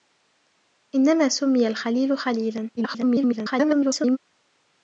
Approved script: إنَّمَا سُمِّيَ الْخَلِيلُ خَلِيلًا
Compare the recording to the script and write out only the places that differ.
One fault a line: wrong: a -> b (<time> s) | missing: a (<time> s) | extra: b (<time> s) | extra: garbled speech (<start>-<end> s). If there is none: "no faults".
extra: garbled speech (2.8-4.2 s)